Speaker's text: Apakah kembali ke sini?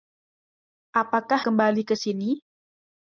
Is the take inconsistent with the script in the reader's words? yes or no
no